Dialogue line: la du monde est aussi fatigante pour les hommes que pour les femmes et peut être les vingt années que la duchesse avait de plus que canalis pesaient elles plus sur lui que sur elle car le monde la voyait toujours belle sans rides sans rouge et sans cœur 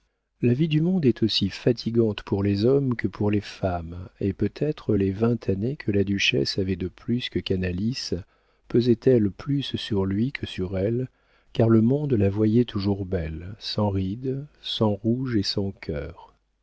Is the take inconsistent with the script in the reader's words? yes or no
yes